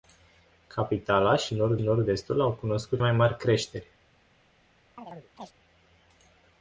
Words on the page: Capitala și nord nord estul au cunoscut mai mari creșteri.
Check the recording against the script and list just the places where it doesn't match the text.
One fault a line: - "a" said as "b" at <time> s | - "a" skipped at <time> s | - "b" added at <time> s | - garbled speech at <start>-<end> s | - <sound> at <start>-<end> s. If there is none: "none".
- chirp at 5.0-5.5 s